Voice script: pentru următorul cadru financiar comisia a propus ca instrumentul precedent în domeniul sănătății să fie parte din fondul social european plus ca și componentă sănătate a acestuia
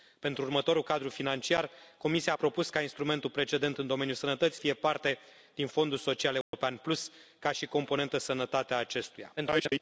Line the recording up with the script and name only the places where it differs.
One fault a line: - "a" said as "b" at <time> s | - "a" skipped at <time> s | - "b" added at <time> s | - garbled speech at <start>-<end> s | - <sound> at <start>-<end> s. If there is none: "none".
- "să" skipped at 4.6 s
- dropout at 6.4-6.5 s
- garbled speech at 9.4-9.8 s